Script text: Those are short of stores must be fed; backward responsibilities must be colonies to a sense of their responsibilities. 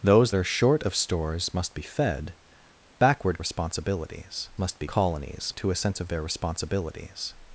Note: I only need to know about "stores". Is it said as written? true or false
true